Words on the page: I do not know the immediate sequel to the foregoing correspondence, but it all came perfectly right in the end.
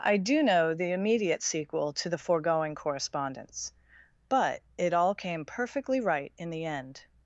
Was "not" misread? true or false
true